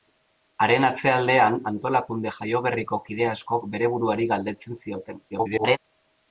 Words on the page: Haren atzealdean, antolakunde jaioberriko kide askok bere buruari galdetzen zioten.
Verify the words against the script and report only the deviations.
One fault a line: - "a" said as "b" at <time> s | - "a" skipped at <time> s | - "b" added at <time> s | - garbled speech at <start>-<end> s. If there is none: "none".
- garbled speech at 5.3-5.8 s